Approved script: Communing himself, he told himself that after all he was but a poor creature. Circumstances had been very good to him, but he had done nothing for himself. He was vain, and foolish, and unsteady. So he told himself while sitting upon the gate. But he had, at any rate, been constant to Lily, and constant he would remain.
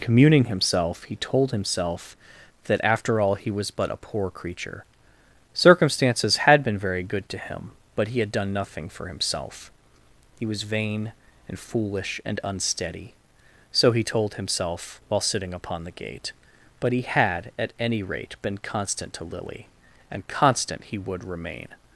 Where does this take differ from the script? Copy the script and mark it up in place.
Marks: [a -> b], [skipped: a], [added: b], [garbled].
Communing himself, he told himself that after all he was but a poor creature. Circumstances had been very good to him, but he had done nothing for himself. He was vain, and foolish, and unsteady. So he told himself while sitting upon the gate. But he had, at any rate, been constant to Lily, and constant he would remain.